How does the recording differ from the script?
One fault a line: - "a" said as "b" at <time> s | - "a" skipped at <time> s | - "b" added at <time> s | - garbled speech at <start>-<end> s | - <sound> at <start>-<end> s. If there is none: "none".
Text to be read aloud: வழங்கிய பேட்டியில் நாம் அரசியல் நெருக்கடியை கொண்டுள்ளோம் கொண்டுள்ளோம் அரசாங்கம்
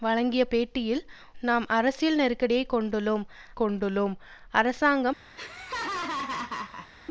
- laugh at 5.3-6.9 s